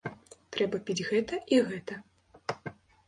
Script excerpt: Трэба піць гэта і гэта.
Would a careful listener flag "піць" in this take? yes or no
no